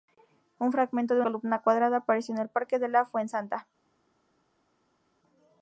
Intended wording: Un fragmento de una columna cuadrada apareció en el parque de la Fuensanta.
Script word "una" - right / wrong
wrong